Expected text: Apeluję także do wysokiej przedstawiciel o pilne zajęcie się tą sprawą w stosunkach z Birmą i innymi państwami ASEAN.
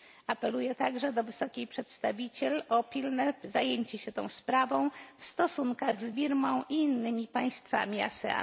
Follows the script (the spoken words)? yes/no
yes